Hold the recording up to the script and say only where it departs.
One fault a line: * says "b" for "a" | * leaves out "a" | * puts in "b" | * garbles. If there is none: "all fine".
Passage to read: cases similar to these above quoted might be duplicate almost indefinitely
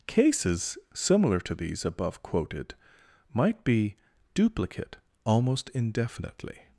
all fine